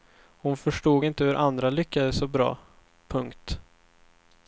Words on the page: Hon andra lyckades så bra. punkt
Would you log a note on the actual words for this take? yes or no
yes